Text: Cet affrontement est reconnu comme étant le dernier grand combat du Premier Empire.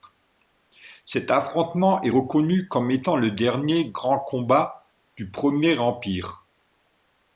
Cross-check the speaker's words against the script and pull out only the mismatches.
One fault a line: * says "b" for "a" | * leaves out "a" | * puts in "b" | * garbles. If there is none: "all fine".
all fine